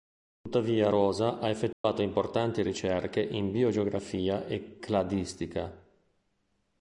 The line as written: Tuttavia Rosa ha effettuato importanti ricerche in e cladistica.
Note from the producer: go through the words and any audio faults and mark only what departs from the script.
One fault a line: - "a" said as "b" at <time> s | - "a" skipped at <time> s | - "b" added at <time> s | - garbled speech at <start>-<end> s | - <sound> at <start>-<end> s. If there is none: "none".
- dropout at 1.7-1.8 s
- "biogeografia" added at 3.5 s